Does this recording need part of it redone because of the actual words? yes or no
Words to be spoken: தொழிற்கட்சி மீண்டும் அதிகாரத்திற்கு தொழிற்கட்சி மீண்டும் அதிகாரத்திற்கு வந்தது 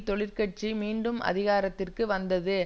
yes